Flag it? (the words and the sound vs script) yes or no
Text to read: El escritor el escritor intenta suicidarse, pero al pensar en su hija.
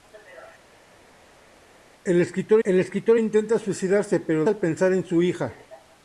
no